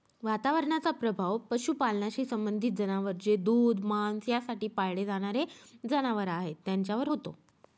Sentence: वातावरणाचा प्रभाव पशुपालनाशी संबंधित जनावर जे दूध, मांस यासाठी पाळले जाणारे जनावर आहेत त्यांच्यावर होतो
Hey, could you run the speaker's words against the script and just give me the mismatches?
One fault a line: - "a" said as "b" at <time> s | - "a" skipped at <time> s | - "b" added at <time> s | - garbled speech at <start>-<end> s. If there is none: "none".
none